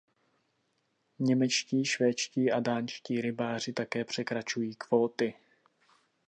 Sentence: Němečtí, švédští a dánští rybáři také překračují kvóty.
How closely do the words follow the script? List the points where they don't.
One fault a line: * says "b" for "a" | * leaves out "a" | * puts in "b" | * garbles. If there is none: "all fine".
all fine